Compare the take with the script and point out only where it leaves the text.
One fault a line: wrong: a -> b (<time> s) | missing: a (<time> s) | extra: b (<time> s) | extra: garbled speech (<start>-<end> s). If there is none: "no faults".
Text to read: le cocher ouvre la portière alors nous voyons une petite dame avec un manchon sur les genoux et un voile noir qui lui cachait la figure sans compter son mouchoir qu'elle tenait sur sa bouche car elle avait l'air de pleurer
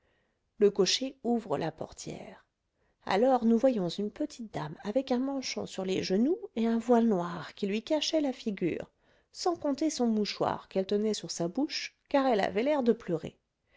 no faults